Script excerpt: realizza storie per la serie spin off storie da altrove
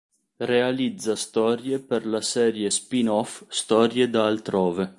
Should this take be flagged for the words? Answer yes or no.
no